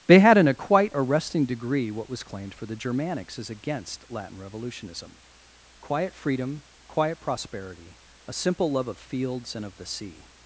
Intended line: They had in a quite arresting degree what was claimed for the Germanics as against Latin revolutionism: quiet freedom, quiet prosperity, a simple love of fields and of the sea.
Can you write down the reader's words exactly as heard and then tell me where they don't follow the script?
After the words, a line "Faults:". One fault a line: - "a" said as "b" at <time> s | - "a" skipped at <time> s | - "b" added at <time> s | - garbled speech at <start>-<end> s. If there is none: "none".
They had in a quite arresting degree what was claimed for the Germanics as against Latin revolutionism: quiet freedom, quiet prosperity, a simple love of fields and of the sea.
Faults:
none